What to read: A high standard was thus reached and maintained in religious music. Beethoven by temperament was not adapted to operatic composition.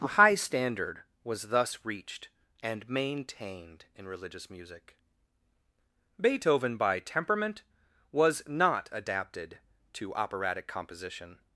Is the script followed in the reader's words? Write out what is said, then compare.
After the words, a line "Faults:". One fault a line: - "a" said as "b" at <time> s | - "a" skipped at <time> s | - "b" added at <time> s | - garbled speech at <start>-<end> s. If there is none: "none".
A high standard was thus reached and maintained in religious music. Beethoven by temperament was not adapted to operatic composition.
Faults:
none